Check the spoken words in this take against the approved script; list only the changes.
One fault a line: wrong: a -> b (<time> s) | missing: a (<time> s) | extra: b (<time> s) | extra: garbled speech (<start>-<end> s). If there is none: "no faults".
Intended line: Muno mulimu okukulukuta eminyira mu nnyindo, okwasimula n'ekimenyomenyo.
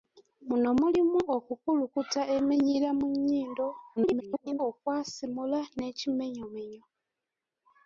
extra: garbled speech (4.0-4.6 s)